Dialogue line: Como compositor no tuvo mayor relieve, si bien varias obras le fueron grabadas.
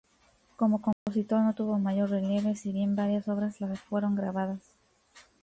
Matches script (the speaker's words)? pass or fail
pass